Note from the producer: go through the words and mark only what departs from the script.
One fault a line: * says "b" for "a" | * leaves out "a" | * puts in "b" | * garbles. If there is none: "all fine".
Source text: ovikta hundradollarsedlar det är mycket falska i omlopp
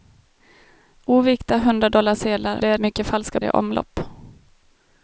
all fine